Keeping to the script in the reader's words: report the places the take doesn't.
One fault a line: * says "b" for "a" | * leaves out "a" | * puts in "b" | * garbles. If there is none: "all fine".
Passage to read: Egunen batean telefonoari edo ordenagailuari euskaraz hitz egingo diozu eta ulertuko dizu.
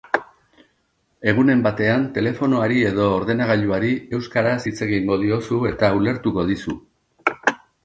all fine